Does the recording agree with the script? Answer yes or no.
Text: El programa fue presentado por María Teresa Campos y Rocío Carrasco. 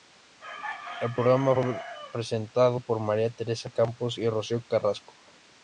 yes